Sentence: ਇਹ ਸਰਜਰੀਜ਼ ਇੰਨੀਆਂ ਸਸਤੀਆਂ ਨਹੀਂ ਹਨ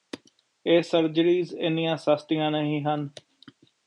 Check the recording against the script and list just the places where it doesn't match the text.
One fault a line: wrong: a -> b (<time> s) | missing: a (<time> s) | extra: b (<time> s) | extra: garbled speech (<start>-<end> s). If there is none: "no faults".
no faults